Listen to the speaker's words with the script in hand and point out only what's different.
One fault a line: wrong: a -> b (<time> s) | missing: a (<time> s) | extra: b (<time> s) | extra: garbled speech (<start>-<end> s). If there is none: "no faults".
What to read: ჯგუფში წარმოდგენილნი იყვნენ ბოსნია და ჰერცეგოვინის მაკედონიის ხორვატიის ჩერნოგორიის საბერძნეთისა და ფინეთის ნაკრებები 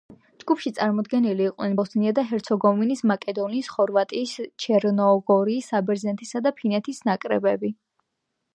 no faults